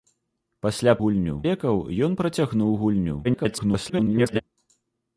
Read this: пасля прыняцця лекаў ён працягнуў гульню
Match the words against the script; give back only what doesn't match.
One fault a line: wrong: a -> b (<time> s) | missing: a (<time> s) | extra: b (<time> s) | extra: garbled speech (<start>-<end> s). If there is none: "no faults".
wrong: прыняцця -> гульню (1.0 s)
extra: garbled speech (3.2-4.4 s)